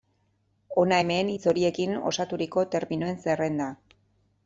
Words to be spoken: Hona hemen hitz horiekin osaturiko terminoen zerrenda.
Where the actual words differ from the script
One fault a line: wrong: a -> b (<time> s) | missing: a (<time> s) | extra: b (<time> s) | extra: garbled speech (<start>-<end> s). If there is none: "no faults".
no faults